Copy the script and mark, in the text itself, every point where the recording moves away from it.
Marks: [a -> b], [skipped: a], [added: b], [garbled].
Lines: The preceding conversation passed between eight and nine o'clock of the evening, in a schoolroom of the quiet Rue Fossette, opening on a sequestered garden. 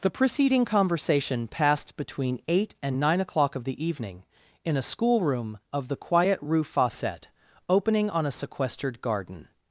The preceding conversation passed between eight and nine o'clock of the evening, in a schoolroom of the quiet Rue Fossette, opening on a sequestered garden.